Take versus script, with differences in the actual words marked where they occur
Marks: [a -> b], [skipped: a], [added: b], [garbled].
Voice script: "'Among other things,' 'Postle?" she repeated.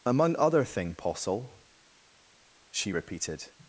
"'Among other [things,' -> thing] 'Postle?" she repeated.